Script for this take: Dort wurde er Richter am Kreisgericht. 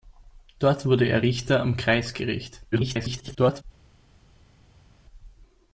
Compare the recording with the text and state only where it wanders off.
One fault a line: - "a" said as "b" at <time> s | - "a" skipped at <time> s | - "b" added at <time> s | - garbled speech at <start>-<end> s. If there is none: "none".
- garbled speech at 2.7-3.6 s